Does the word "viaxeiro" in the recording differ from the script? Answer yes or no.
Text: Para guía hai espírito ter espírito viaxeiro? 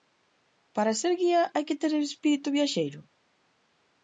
no